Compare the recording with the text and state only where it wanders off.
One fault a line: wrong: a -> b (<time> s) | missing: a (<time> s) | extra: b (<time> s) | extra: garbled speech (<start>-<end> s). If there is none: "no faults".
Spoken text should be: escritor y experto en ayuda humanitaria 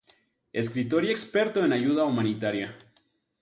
no faults